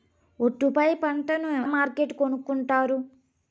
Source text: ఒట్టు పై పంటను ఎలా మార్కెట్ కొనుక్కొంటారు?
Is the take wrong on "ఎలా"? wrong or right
wrong